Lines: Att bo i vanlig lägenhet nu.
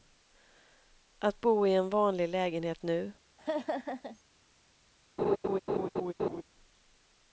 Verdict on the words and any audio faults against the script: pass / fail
fail